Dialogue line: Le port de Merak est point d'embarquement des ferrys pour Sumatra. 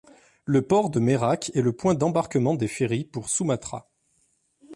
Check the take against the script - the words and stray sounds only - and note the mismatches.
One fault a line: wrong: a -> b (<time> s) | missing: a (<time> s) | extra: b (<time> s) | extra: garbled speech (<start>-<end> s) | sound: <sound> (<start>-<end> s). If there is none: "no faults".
extra: le (1.6 s)